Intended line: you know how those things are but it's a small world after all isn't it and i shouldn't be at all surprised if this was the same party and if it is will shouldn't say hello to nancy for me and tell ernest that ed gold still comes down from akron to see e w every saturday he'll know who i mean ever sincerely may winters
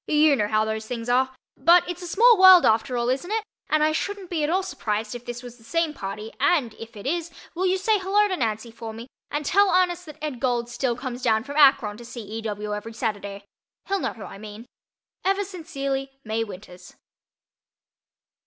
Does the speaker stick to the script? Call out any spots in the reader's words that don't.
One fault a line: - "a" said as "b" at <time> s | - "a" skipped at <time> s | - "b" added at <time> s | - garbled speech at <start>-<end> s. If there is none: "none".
- "shouldn't" said as "you" at 7.7 s